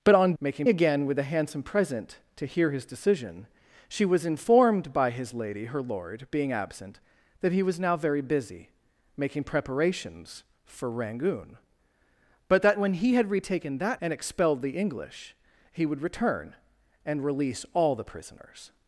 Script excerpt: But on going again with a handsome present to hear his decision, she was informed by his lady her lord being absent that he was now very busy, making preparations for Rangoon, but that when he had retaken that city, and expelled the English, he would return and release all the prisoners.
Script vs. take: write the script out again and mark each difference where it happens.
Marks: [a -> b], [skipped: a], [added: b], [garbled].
But on [going -> making] again with a handsome present to hear his decision, she was informed by his lady her lord being absent that he was now very busy, making preparations for Rangoon, but that when he had retaken that [skipped: city,] and expelled the English, he would return and release all the prisoners.